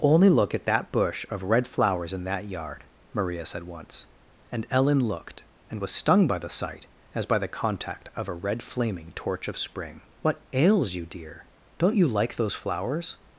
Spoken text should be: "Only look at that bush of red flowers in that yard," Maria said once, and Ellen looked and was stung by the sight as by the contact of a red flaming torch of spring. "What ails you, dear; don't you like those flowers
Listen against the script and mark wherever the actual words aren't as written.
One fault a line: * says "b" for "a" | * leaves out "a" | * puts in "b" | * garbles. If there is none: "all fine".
all fine